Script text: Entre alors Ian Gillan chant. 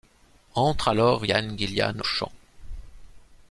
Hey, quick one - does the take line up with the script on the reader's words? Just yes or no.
yes